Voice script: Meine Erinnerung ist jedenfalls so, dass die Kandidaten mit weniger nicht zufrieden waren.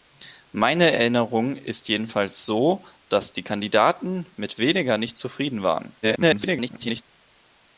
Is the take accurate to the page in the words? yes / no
no